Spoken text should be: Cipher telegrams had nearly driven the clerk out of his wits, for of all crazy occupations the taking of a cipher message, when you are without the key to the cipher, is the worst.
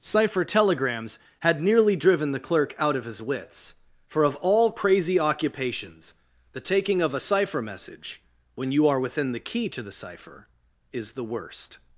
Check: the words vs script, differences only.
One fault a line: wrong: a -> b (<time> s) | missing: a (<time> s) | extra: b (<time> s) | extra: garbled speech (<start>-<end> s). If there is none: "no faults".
wrong: without -> within (9.0 s)